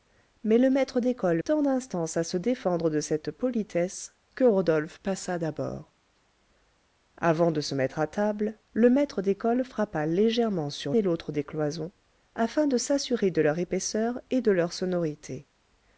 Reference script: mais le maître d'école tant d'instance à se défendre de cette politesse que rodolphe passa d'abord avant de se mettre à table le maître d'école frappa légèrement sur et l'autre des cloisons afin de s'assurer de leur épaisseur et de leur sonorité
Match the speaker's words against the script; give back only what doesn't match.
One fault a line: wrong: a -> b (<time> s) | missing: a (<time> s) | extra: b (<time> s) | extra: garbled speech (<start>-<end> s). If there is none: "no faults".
no faults